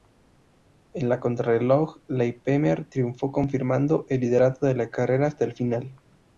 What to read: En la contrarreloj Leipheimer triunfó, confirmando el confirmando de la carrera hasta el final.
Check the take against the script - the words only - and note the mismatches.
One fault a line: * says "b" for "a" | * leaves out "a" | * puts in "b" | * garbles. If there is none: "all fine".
* says "liderato" for "confirmando"